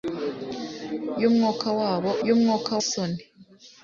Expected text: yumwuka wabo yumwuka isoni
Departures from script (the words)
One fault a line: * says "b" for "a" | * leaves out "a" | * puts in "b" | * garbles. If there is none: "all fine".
all fine